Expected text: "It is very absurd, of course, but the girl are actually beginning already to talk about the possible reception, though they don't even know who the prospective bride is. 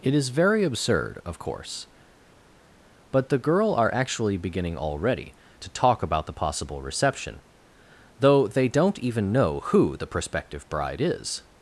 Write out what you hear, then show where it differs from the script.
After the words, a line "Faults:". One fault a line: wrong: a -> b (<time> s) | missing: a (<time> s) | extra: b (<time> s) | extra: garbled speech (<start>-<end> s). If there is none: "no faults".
"It is very absurd, of course, but the girl are actually beginning already to talk about the possible reception, though they don't even know who the prospective bride is.
Faults:
no faults